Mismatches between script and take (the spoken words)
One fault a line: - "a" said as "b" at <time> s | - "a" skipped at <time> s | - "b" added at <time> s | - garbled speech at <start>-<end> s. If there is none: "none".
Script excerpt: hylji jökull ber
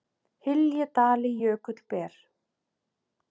- "dali" added at 0.9 s